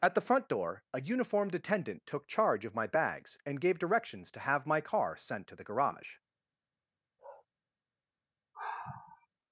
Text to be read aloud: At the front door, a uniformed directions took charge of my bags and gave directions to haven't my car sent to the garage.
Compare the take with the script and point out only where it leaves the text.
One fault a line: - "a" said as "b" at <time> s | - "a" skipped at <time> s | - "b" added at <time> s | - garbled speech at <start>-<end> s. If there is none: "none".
- "directions" said as "attendant" at 1.5 s
- "haven't" said as "have" at 4.4 s